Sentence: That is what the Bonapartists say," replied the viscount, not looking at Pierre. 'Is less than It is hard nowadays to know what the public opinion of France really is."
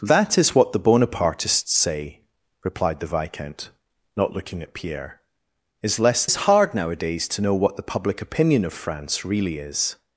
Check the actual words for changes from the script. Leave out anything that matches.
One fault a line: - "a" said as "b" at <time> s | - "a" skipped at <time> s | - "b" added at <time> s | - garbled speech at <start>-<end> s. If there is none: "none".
- "than It" skipped at 6.3 s